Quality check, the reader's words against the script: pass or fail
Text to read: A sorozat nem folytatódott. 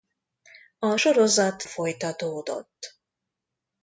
fail